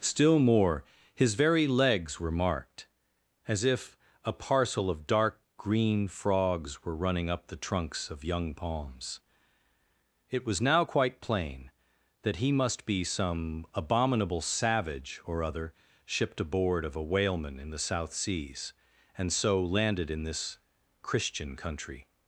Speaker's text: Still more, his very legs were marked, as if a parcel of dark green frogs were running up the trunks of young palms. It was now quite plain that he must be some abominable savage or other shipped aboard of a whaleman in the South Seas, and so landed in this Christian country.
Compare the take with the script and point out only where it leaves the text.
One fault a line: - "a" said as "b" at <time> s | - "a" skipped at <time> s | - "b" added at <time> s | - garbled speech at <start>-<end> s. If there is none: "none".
none